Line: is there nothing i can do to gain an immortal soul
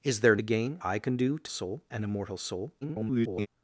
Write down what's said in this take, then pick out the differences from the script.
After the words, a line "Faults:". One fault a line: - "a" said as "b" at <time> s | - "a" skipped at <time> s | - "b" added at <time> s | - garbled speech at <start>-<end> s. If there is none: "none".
is there gain i can do to soul an immortal soul [garbled]
Faults:
- "nothing" said as "gain" at 0.4 s
- "gain" said as "soul" at 1.5 s
- garbled speech at 2.8-3.5 s